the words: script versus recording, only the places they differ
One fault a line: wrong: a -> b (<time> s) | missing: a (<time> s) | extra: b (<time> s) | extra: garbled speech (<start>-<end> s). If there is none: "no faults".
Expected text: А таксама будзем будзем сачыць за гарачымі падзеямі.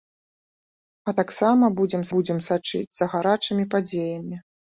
no faults